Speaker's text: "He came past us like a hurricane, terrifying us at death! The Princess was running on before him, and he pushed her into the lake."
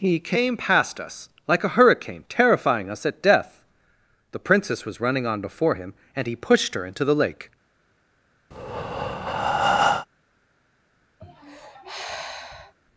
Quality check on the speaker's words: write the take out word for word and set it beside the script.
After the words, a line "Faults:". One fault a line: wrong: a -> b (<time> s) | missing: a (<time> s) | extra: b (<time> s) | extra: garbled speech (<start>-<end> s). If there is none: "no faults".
"He came past us like a hurricane, terrifying us at death! The Princess was running on before him, and he pushed her into the lake."
Faults:
no faults